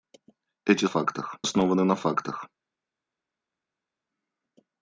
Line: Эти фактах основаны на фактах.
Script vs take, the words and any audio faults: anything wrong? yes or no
no